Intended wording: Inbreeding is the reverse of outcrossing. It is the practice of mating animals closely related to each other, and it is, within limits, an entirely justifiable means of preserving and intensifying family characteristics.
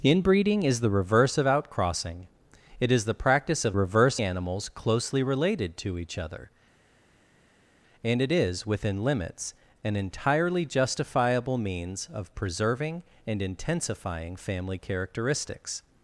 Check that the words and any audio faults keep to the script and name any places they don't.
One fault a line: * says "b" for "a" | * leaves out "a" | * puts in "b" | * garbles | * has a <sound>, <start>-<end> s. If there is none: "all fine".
* says "reverse" for "mating"